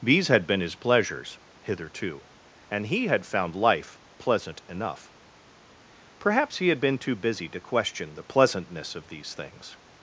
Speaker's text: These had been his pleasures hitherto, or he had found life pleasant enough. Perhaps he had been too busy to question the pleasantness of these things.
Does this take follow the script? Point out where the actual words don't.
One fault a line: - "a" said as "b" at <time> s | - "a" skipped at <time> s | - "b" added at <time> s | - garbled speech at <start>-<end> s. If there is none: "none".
- "or" said as "and" at 2.7 s